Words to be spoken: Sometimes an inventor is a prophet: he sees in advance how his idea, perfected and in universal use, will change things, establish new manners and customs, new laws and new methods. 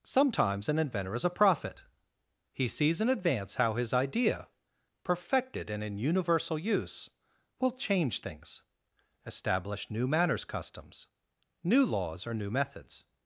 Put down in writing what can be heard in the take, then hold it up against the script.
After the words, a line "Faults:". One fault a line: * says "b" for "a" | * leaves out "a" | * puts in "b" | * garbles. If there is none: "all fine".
Sometimes an inventor is a prophet: he sees in advance how his idea, perfected and in universal use, will change things, establish new manners customs, new laws or new methods.
Faults:
* leaves out "and"
* says "or" for "and"